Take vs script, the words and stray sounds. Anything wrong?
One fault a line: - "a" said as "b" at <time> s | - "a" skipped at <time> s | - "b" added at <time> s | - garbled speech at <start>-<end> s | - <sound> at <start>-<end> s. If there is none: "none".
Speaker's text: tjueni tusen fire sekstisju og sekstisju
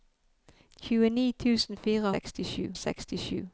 none